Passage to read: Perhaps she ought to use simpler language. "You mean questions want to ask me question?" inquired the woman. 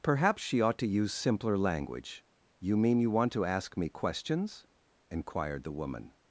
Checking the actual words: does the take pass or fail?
fail